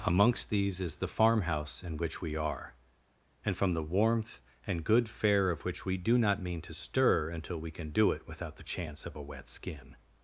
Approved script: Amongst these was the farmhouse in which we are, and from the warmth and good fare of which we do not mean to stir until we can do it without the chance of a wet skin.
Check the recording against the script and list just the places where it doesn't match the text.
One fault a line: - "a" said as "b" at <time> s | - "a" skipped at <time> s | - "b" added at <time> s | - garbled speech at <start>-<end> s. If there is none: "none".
- "was" said as "is" at 0.8 s